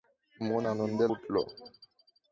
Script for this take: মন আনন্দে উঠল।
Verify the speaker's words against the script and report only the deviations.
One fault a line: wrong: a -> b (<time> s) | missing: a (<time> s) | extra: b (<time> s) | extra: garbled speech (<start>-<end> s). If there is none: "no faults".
no faults